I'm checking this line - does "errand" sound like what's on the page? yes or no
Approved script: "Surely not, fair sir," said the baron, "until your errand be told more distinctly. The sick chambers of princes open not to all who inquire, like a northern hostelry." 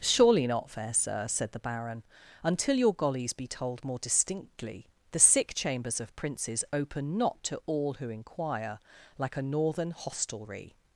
no